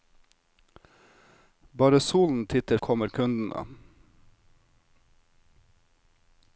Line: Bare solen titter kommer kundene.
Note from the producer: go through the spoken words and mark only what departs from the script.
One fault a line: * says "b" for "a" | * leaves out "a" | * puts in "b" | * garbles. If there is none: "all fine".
all fine